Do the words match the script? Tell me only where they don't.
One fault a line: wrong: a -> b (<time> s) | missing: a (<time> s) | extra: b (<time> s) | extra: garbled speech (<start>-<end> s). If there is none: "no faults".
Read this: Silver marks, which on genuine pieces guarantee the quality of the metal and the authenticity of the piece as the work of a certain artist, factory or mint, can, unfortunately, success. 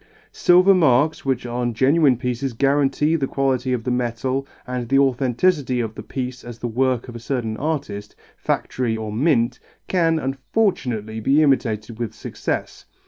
extra: be imitated with (11.2 s)